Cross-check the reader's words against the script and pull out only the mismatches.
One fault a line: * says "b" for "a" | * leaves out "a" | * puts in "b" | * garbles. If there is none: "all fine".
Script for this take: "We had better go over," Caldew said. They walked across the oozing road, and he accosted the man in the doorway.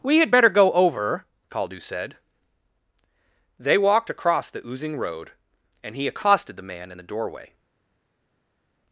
all fine